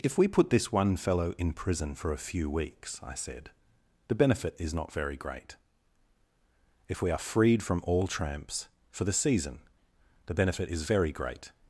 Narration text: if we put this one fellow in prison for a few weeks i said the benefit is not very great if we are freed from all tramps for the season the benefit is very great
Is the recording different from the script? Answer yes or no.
no